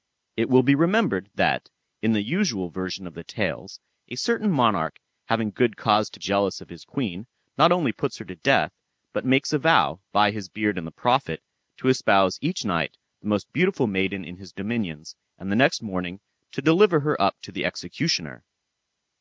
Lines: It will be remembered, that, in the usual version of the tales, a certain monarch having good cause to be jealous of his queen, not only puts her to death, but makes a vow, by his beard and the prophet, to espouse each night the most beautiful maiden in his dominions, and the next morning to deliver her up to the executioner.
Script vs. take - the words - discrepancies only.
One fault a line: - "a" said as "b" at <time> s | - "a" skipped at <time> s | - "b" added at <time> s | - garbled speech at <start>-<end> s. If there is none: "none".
- "be" skipped at 6.2 s